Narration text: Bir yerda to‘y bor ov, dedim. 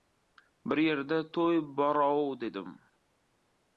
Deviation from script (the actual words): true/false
false